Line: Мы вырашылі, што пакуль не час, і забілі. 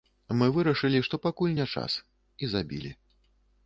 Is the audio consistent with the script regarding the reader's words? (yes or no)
yes